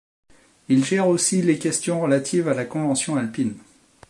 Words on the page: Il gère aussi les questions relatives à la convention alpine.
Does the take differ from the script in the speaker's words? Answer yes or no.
no